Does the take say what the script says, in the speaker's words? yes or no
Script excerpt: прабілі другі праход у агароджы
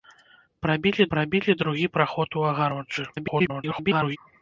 no